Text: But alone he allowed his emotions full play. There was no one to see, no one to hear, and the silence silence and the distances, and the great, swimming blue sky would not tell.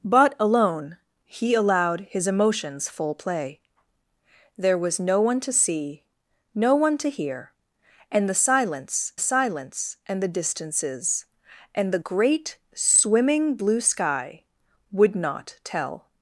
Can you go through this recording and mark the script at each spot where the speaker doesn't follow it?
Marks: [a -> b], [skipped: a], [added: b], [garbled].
But alone he allowed his emotions full play. There was no one to see, no one to hear, and the silence silence and the distances, and the great, swimming blue sky would not tell.